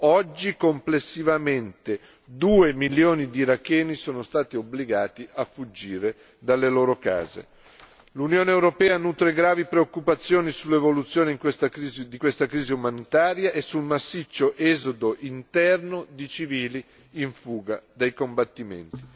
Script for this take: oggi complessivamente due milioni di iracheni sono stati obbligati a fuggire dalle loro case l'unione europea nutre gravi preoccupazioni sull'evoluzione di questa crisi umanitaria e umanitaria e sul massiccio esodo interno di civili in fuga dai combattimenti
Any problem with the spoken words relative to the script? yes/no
yes